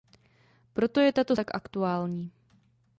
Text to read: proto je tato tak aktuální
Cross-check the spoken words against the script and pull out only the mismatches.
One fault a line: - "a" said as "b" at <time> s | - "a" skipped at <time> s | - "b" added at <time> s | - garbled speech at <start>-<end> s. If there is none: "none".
none